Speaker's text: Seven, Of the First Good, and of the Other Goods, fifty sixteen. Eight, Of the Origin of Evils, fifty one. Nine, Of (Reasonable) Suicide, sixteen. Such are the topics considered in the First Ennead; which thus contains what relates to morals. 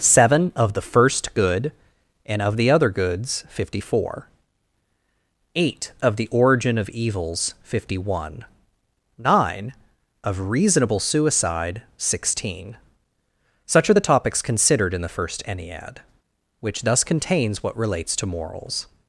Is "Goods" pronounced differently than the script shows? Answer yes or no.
no